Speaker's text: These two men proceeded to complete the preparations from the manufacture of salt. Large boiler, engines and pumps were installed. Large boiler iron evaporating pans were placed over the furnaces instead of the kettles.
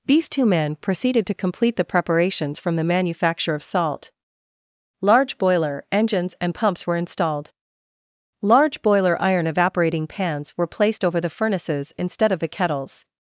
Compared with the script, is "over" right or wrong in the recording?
right